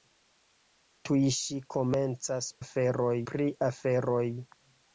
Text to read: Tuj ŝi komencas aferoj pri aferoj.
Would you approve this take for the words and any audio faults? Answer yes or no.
yes